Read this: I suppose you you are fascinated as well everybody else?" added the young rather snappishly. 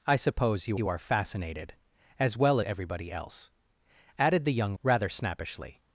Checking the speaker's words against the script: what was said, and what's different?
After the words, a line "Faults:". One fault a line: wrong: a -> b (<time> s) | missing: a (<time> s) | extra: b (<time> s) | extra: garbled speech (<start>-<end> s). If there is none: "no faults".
I suppose you you are fascinated as well everybody else?" added the young rather snappishly.
Faults:
no faults